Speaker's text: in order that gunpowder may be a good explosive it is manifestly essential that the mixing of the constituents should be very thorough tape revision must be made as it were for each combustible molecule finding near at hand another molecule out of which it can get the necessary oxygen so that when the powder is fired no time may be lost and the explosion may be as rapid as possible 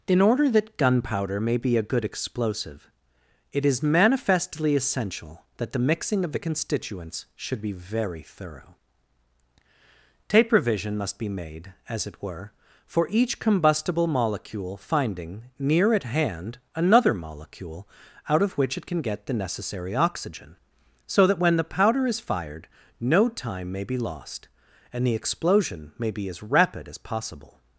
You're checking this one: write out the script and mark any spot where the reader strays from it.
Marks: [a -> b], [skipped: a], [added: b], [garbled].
in order that gunpowder may be a good explosive it is manifestly essential that the mixing of the constituents should be very thorough tape revision must be made as it were for each combustible molecule finding near at hand another molecule out of which it can get the necessary oxygen so that when the powder is fired no time may be lost and the explosion may be as rapid as possible